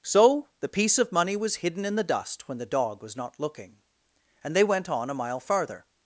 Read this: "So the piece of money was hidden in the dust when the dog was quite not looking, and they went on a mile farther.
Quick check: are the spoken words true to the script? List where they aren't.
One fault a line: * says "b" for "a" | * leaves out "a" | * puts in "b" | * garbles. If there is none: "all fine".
* leaves out "quite"